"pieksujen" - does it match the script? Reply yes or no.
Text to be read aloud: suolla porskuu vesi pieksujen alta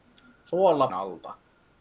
no